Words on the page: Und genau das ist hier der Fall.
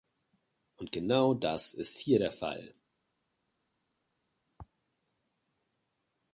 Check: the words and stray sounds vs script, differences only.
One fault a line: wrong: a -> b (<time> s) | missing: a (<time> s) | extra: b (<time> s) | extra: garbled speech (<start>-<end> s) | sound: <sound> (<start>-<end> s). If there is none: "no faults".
no faults